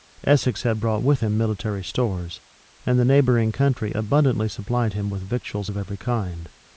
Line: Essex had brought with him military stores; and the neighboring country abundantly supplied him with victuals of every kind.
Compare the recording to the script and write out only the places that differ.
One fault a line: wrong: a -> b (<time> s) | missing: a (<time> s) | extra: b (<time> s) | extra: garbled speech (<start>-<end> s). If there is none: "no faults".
no faults